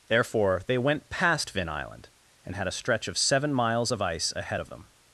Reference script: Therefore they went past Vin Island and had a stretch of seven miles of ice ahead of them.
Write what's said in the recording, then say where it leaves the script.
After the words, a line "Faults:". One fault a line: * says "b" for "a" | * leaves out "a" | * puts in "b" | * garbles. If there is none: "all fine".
Therefore they went past Vin Island and had a stretch of seven miles of ice ahead of them.
Faults:
all fine